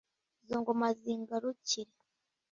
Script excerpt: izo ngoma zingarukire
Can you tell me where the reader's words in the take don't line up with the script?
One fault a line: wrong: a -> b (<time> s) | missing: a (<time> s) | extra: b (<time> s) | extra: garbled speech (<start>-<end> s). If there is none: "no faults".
no faults